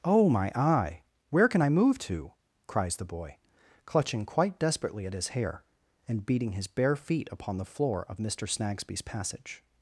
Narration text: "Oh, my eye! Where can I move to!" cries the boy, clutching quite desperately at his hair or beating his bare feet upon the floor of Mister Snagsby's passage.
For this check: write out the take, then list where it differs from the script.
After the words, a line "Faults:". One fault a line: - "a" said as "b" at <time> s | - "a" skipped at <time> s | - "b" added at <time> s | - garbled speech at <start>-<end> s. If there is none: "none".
"Oh, my eye! Where can I move to!" cries the boy, clutching quite desperately at his hair and beating his bare feet upon the floor of Mister Snagsby's passage.
Faults:
- "or" said as "and" at 6.1 s